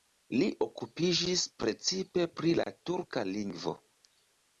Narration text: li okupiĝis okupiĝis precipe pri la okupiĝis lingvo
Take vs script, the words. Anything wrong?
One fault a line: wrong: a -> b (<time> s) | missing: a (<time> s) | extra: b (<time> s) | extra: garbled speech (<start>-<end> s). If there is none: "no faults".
missing: okupiĝis (1.4 s)
wrong: okupiĝis -> turka (2.9 s)